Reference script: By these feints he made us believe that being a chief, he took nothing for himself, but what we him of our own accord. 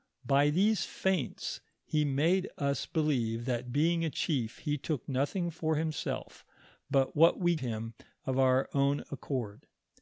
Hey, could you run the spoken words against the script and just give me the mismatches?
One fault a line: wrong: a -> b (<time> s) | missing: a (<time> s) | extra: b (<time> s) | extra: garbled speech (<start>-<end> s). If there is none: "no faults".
no faults